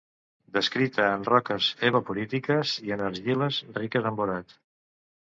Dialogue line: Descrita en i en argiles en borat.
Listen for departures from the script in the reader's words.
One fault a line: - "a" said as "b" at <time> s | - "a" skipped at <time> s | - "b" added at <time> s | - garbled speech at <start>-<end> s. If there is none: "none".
- "roques evaporítiques" added at 1.3 s
- "riques" added at 3.8 s